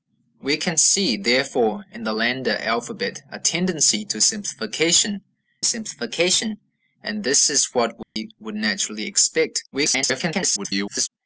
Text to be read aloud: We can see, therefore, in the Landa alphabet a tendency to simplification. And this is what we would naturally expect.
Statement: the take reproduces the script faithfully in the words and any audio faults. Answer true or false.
false